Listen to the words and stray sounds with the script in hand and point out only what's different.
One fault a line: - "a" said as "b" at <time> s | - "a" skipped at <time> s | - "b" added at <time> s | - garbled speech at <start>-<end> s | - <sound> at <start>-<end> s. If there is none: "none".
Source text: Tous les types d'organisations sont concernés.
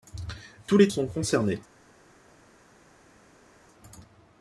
- "types d'organisations" skipped at 0.9 s